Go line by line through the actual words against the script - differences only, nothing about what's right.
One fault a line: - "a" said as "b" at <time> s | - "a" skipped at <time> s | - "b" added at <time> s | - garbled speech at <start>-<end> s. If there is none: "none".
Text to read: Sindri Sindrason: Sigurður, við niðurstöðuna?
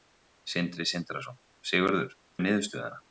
none